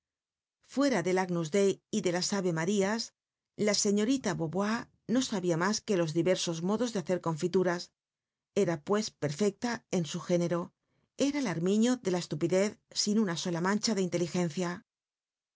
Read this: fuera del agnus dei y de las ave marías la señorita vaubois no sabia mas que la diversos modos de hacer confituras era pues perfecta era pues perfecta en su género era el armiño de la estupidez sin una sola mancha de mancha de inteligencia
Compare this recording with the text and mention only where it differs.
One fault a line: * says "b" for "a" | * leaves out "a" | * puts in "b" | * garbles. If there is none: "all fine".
* says "los" for "la"
* leaves out "era pues perfecta"
* leaves out "mancha de"